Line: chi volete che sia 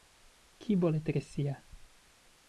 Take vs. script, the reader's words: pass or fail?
pass